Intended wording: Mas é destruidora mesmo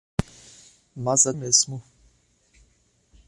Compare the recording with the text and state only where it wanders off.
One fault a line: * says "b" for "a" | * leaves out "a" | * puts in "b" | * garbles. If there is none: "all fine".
* leaves out "destruidora"